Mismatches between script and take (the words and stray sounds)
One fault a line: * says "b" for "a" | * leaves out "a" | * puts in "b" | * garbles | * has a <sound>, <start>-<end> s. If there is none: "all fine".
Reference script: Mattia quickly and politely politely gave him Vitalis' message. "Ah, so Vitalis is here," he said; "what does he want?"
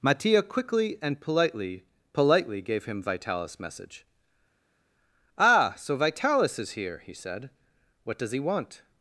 all fine